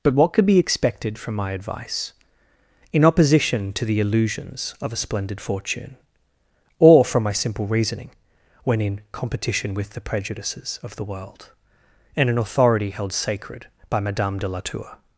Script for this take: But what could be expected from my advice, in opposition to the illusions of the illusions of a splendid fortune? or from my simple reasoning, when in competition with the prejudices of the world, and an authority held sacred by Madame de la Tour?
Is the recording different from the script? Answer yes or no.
yes